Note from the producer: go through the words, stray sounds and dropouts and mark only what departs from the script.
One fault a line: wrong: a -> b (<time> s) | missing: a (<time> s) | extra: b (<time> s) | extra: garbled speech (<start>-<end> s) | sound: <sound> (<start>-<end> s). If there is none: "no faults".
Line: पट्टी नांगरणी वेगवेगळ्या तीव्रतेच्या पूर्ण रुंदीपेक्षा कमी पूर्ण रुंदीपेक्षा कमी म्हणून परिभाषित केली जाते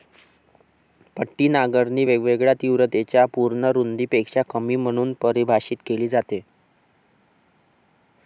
missing: पूर्ण रुंदीपेक्षा कमी (4.8 s)